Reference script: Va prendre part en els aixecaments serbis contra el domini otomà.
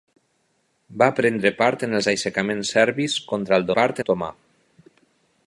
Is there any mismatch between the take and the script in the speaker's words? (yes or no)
yes